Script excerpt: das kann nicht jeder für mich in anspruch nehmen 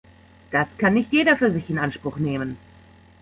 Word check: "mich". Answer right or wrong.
wrong